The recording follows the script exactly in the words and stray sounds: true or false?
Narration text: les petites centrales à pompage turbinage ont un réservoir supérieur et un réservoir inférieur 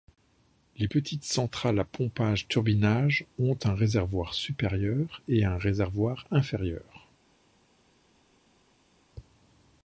true